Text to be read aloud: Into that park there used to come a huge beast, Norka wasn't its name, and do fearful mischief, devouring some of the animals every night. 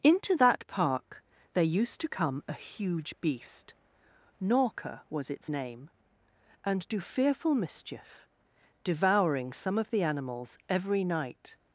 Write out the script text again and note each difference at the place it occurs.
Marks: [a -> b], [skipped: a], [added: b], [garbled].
Into that park there used to come a huge beast, Norka [wasn't -> was] its name, and do fearful mischief, devouring some of the animals every night.